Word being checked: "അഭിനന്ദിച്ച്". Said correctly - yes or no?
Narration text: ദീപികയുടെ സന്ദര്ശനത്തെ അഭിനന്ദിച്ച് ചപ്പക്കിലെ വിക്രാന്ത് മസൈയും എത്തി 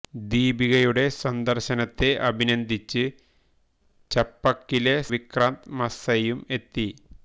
yes